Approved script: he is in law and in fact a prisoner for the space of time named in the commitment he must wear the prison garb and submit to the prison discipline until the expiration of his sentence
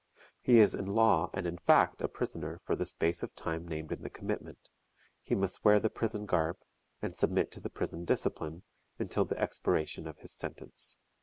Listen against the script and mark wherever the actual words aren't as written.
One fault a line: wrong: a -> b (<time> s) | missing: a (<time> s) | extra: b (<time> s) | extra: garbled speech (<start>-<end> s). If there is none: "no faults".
no faults